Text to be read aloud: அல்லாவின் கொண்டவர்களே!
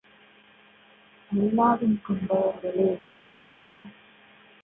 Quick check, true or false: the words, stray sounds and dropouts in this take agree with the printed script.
true